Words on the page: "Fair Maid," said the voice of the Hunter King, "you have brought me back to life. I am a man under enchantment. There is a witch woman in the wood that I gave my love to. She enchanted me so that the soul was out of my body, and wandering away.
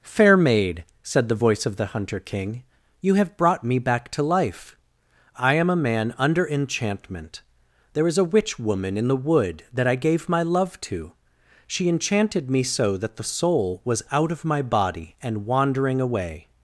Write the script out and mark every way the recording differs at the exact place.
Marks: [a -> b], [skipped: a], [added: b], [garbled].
"Fair Maid," said the voice of the Hunter King, "you have brought me back to life. I am a man under enchantment. There is a witch woman in the wood that I gave my love to. She enchanted me so that the soul was out of my body, and wandering away.